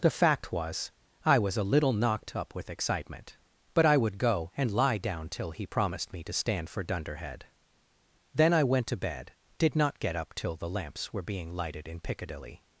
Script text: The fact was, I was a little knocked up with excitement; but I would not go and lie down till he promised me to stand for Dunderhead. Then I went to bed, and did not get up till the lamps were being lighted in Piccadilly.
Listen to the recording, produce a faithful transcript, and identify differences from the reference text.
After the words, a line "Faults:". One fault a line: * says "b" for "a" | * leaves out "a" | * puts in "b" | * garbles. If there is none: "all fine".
The fact was, I was a little knocked up with excitement; but I would go and lie down till he promised me to stand for Dunderhead. Then I went to bed, did not get up till the lamps were being lighted in Piccadilly.
Faults:
* leaves out "not"
* leaves out "and"